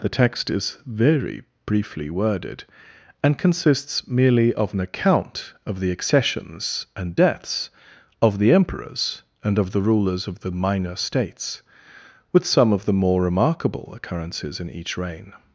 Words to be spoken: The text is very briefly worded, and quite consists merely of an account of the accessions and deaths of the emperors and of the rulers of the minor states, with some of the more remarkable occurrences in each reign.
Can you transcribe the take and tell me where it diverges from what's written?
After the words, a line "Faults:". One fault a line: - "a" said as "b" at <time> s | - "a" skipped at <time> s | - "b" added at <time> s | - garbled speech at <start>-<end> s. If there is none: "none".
The text is very briefly worded, and consists merely of an account of the accessions and deaths of the emperors and of the rulers of the minor states, with some of the more remarkable occurrences in each reign.
Faults:
- "quite" skipped at 3.4 s